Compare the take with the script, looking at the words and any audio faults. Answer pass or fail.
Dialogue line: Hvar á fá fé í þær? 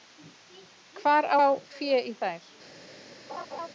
fail